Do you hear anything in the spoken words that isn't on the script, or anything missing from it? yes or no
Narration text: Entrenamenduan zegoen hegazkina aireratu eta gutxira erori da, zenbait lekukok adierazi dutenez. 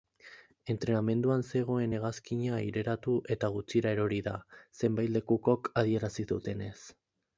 no